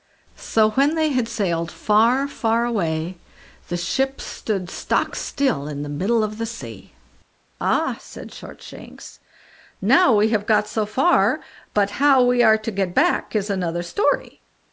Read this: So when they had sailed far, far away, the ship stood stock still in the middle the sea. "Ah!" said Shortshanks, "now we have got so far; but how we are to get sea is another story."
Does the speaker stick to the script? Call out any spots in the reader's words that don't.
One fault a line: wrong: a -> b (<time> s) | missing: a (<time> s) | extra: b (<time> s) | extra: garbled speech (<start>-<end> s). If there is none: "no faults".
extra: of (6.2 s)
wrong: sea -> back (12.9 s)